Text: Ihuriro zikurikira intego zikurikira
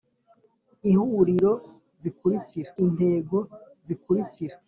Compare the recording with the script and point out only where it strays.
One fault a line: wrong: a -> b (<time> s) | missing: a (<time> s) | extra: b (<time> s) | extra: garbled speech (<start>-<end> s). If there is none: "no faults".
no faults